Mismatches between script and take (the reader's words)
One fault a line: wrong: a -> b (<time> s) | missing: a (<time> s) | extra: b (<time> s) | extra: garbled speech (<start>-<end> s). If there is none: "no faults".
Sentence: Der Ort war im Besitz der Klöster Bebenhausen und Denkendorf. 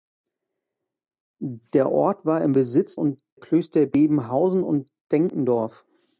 wrong: der -> und (2.9 s)